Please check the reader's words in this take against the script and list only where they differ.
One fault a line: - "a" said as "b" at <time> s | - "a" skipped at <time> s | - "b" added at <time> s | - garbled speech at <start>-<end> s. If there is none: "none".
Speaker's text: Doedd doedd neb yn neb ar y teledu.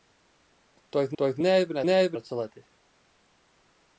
none